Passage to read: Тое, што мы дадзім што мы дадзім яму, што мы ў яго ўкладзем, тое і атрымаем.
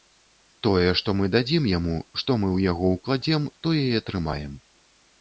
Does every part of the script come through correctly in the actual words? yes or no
no